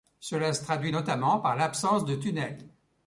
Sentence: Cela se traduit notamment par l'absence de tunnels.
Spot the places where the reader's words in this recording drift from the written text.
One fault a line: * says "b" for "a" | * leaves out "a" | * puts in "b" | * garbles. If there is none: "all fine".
all fine